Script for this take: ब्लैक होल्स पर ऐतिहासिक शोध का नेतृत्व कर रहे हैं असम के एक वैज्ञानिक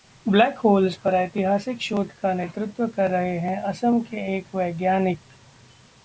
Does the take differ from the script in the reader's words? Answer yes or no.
no